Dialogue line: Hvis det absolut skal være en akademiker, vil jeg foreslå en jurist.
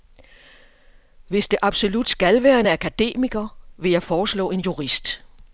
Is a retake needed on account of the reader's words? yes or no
no